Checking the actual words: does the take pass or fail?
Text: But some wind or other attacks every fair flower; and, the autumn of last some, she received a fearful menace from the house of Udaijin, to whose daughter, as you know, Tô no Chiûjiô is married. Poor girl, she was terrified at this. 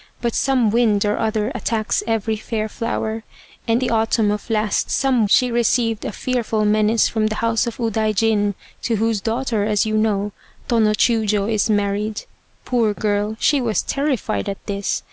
pass